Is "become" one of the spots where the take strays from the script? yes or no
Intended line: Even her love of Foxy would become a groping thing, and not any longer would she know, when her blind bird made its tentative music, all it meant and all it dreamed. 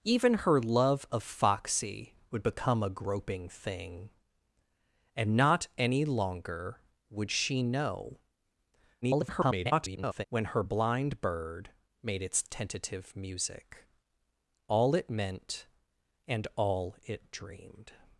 no